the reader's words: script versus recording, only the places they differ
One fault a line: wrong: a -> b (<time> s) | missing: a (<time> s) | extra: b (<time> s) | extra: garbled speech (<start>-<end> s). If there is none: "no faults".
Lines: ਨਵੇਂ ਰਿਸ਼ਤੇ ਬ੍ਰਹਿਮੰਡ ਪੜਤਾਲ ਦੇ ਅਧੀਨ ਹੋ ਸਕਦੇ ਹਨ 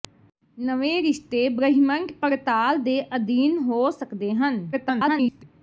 extra: garbled speech (4.7-5.4 s)